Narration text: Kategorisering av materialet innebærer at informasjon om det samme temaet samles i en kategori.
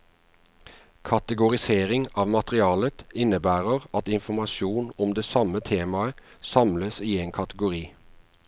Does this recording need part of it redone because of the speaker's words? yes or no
no